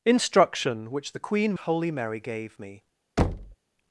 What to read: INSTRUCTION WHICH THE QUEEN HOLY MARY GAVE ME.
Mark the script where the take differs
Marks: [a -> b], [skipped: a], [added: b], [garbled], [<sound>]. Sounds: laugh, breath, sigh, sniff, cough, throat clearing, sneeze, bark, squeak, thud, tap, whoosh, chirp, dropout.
INSTRUCTION WHICH THE QUEEN HOLY MARY GAVE ME. [thud]